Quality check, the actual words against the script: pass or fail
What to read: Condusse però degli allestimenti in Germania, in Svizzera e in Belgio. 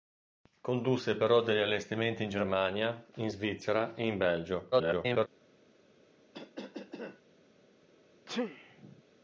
fail